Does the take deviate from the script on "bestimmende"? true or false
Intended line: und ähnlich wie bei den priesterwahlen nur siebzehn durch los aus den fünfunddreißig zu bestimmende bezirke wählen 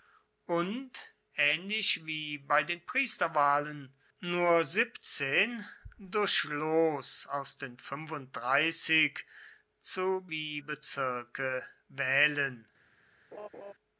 true